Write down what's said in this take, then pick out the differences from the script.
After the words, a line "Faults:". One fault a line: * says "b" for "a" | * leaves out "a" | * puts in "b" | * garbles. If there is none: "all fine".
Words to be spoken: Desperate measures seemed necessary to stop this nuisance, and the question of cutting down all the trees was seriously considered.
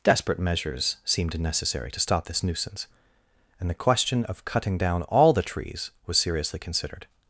Desperate measures seemed necessary to stop this nuisance, and the question of cutting down all the trees was seriously considered.
Faults:
all fine